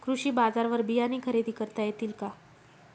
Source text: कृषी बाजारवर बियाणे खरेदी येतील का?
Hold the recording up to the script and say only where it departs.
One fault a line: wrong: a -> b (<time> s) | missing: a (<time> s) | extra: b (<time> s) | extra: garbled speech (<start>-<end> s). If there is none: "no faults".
extra: करता (1.5 s)